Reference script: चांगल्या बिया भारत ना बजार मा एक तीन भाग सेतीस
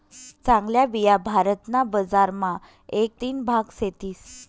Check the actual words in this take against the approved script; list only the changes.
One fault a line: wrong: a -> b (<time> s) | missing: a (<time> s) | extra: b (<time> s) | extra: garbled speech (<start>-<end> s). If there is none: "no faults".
no faults